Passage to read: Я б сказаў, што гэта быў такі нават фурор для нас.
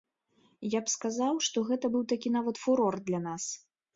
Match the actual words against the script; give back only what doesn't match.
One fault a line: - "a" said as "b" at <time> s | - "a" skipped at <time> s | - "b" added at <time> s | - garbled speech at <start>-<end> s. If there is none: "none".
none